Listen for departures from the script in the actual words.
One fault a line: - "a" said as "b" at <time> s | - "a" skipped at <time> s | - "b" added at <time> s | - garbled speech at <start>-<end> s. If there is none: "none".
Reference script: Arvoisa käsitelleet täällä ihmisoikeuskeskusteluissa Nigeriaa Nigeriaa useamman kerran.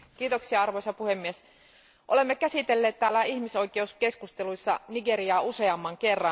- "puhemies olemme" added at 0.9 s
- "Nigeriaa" skipped at 5.4 s